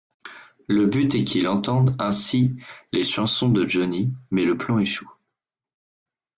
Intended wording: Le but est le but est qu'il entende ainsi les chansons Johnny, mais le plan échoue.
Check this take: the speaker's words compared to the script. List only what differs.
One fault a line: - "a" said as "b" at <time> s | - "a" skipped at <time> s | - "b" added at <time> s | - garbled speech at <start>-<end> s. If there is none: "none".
- "le but est" skipped at 1.2 s
- "de" added at 3.5 s